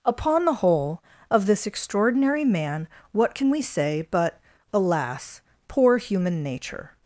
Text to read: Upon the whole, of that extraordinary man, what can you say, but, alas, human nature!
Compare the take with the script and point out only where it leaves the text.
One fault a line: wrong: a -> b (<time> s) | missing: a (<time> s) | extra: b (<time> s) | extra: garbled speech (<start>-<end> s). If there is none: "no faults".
wrong: that -> this (1.4 s)
wrong: you -> we (3.5 s)
extra: poor (5.7 s)